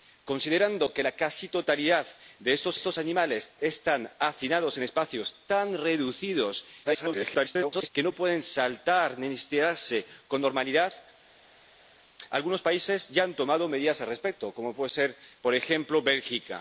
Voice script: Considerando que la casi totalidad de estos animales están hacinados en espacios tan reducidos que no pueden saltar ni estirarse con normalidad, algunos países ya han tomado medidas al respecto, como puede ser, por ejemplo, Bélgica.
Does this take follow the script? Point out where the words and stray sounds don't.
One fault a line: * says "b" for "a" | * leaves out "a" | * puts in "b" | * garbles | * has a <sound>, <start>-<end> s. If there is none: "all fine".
* puts in "estos"
* garbles